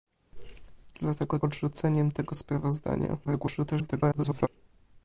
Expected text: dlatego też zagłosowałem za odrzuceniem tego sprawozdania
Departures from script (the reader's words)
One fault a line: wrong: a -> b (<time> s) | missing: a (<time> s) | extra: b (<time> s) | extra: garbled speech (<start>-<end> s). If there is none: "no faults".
missing: też zagłosowałem za (1.4 s)
extra: garbled speech (3.2-4.5 s)